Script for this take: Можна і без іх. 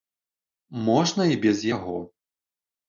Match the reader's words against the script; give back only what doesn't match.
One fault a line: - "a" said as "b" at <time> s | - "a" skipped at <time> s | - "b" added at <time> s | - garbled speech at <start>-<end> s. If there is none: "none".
- "іх" said as "яго" at 1.7 s